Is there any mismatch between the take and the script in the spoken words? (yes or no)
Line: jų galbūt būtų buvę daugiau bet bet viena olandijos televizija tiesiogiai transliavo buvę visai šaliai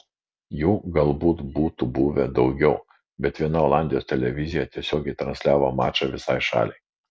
yes